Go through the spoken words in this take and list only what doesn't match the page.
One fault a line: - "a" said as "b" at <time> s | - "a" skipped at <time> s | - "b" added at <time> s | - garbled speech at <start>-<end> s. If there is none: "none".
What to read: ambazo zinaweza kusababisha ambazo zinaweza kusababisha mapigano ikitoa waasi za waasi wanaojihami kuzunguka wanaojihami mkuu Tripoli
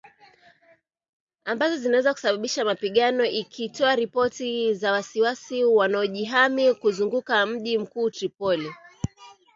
- "ambazo zinaweza kusababisha" skipped at 2.6 s
- "waasi" said as "ripoti" at 4.0 s
- "wanaojihami" said as "mji" at 7.5 s